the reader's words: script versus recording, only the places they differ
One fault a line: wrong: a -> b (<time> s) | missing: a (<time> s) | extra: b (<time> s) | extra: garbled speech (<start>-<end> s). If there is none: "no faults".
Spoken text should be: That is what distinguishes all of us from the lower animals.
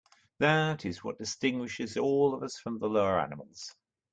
no faults